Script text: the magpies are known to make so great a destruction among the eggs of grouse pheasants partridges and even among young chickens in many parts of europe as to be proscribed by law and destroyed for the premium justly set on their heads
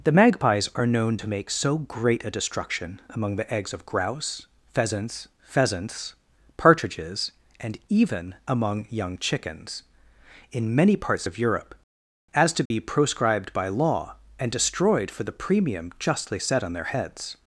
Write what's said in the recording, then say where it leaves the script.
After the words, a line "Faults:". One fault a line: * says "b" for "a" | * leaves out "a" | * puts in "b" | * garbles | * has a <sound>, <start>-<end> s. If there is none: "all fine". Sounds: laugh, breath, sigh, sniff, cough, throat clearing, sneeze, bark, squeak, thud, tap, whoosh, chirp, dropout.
the magpies are known to make so great a destruction among the eggs of grouse pheasants pheasants partridges and even among young chickens in many parts of europe as to be proscribed by law and destroyed for the premium justly set on their heads
Faults:
* puts in "pheasants"
* has a dropout, 12.7-12.7 s